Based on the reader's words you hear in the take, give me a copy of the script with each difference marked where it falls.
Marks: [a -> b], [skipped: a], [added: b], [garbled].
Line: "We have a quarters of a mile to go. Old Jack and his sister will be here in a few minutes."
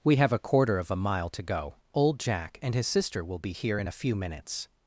"We have a [quarters -> quarter] of a mile to go. Old Jack and his sister will be here in a few minutes."